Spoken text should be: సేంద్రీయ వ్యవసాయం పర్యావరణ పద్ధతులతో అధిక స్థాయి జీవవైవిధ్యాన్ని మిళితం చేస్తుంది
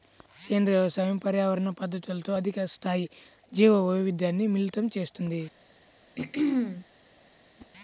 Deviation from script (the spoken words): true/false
false